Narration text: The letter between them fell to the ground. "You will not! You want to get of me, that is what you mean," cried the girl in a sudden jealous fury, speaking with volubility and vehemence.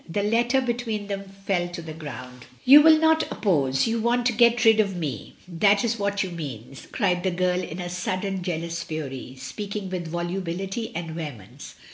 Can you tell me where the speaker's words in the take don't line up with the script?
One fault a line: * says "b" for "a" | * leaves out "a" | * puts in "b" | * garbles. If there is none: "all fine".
* puts in "oppose"
* puts in "rid"